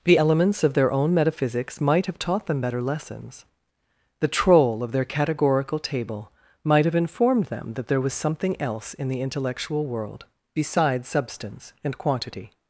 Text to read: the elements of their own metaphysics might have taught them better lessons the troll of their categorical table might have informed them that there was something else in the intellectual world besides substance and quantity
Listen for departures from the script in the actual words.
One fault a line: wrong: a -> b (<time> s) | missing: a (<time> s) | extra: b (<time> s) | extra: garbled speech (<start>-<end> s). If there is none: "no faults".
no faults